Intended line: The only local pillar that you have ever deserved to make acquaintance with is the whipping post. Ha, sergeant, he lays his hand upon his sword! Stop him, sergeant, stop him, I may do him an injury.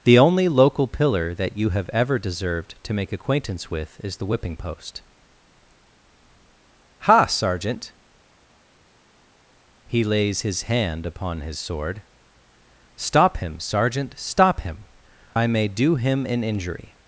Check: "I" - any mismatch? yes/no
no